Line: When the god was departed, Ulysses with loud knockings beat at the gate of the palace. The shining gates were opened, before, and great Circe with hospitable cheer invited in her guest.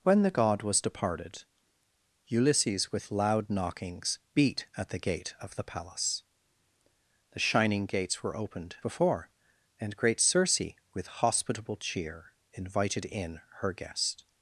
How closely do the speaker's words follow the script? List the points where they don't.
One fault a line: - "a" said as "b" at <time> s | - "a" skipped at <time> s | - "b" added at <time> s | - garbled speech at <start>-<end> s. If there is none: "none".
none